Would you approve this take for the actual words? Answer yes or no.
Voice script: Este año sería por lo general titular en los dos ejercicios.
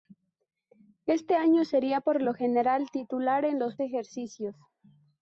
no